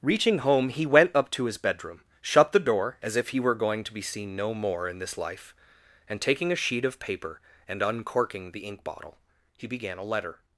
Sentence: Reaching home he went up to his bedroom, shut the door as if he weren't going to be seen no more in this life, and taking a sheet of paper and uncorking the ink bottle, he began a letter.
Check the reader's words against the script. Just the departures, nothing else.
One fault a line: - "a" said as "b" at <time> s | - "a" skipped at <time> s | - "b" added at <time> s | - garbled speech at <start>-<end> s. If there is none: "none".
- "weren't" said as "were" at 3.4 s